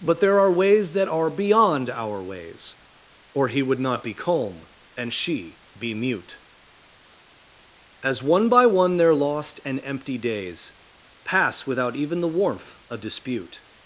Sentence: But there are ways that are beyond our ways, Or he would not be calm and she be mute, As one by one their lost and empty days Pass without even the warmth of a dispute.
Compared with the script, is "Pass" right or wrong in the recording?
right